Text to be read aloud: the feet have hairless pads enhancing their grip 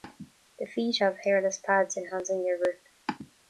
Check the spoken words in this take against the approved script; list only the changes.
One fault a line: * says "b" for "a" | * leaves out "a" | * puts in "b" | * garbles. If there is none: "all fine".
all fine